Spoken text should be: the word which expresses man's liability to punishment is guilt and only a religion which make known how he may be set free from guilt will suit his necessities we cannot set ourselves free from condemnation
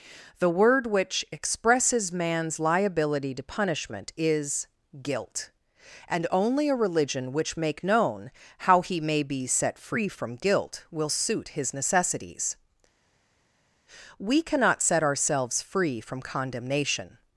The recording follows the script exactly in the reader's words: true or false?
true